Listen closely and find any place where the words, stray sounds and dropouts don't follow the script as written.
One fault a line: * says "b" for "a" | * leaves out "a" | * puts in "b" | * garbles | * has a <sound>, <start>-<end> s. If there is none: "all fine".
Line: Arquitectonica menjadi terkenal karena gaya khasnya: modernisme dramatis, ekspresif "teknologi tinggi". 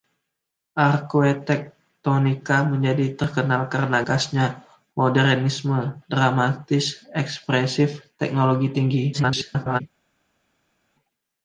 * leaves out "gaya"
* garbles